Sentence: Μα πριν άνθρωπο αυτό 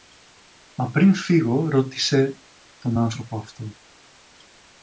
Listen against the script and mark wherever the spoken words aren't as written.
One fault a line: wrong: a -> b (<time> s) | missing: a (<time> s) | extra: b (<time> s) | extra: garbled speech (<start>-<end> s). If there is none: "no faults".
extra: φύγω ρώτησε τον (1.1 s)